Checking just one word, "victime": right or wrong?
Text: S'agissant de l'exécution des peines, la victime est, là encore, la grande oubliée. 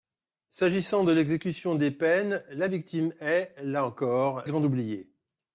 right